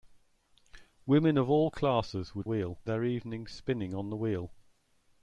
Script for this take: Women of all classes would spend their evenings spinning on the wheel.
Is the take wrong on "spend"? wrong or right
wrong